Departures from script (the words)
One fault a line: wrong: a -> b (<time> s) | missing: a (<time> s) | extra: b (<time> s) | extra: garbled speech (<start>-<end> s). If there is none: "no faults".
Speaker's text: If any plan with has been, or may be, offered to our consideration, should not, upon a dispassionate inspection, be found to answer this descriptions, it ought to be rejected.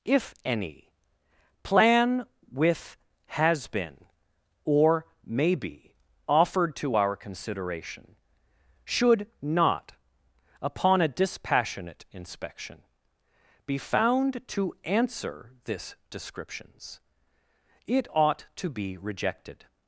no faults